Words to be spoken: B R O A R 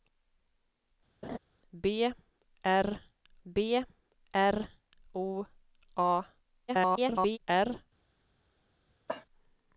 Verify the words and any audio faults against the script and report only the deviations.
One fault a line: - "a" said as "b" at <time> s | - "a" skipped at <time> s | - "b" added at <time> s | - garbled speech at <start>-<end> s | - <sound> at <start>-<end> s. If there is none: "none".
- laugh at 1.2-1.4 s
- "b R" added at 3.4 s
- garbled speech at 6.7-7.4 s
- cough at 9.1-9.3 s